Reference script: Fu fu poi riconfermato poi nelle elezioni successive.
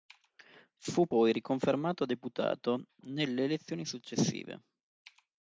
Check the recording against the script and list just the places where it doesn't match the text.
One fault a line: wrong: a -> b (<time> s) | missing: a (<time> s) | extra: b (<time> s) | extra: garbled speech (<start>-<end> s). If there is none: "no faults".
missing: fu (1.1 s)
wrong: poi -> deputato (2.0 s)